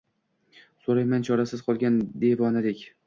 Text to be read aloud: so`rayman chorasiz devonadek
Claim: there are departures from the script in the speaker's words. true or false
true